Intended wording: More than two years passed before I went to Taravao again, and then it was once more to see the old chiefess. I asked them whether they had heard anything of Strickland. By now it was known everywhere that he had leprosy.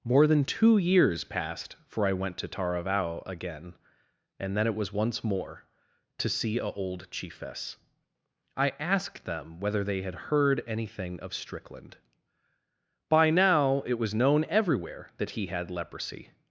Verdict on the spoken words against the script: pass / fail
fail